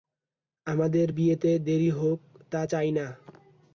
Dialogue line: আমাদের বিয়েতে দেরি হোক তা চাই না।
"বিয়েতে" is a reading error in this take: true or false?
false